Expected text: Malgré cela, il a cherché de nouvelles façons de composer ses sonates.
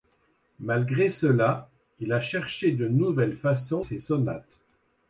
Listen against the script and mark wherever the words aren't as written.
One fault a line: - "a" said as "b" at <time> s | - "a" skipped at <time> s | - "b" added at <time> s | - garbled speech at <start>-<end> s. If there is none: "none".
- "de composer" skipped at 3.9 s